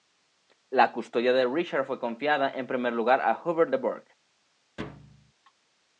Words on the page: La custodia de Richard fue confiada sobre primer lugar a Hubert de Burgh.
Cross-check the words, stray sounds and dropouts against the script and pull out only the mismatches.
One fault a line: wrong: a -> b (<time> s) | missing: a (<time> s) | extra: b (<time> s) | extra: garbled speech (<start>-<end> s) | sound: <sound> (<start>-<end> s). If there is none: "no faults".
wrong: sobre -> en (2.5 s)
sound: thud (4.8-5.3 s)